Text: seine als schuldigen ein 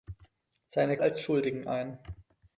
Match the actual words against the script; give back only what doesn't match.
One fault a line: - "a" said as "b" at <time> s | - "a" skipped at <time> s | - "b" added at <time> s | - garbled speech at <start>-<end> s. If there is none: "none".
none